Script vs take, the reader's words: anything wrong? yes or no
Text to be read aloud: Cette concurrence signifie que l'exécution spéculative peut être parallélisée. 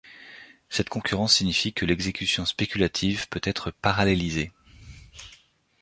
no